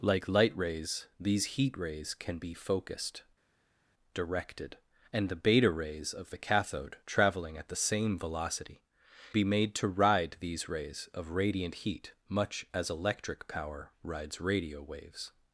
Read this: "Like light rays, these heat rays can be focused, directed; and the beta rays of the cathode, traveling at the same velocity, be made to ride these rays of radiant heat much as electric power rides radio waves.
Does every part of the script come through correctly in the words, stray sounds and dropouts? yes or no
yes